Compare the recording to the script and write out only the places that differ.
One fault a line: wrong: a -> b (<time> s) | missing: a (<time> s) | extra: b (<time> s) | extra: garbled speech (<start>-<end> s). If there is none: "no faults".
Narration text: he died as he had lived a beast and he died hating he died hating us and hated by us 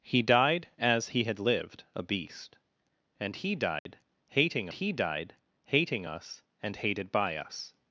no faults